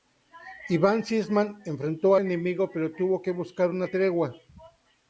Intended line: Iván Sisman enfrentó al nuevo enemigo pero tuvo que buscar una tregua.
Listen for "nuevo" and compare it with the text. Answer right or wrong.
wrong